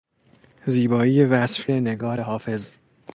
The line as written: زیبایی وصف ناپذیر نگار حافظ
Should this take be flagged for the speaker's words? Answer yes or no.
yes